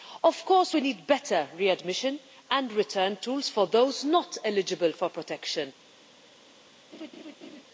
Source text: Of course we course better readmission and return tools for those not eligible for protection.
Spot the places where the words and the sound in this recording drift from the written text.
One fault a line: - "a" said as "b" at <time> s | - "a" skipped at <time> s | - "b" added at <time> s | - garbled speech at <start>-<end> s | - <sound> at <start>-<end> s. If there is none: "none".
- "course" said as "need" at 0.8 s
- laugh at 6.9-7.6 s